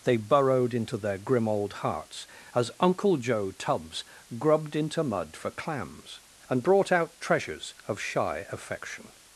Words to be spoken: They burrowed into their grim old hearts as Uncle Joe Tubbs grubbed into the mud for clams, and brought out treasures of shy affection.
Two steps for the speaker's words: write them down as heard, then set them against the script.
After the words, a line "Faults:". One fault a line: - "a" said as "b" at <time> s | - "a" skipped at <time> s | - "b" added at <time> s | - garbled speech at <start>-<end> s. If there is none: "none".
They burrowed into their grim old hearts as Uncle Joe Tubbs grubbed into mud for clams, and brought out treasures of shy affection.
Faults:
- "the" skipped at 5.0 s